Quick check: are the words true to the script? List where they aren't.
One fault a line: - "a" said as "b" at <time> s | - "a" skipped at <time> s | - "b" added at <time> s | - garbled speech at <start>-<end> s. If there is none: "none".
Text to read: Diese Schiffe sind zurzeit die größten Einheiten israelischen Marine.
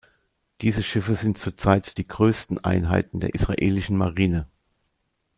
- "der" added at 3.2 s